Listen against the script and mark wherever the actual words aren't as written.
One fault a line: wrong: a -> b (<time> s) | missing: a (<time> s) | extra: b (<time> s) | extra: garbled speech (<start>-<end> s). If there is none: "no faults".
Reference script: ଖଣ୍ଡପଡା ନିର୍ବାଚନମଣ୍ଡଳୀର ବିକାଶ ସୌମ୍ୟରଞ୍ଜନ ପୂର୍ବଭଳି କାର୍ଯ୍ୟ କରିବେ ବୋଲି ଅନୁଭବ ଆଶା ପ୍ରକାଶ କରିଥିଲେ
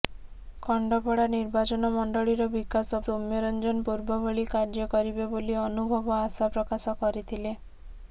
no faults